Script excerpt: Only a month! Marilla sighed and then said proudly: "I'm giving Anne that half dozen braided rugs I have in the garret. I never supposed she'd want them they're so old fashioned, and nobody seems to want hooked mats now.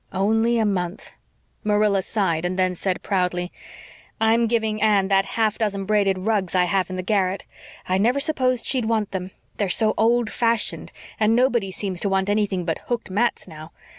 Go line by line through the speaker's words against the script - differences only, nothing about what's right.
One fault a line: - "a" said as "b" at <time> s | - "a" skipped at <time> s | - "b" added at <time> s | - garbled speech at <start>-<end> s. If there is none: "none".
- "anything but" added at 12.3 s